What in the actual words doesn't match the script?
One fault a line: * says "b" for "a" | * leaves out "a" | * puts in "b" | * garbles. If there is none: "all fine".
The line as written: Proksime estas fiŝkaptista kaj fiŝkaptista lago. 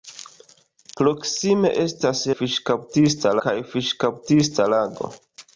all fine